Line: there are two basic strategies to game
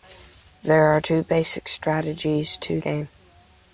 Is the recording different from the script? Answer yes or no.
no